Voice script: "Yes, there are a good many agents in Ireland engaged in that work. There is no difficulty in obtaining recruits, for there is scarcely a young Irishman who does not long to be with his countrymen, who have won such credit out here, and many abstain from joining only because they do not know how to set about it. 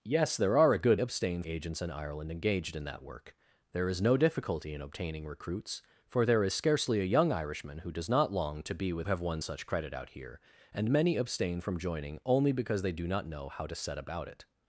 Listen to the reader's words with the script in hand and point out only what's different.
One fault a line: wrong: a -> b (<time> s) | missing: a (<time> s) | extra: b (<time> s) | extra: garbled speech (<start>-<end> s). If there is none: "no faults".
wrong: many -> abstain (1.0 s)
missing: his countrymen who (9.1 s)